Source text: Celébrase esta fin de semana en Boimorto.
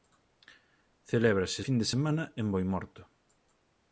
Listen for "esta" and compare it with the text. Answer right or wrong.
wrong